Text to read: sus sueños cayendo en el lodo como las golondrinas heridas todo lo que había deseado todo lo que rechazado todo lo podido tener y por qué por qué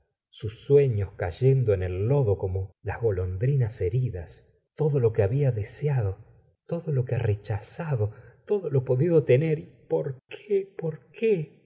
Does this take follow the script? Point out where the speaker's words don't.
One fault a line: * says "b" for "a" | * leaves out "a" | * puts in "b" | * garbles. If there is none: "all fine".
all fine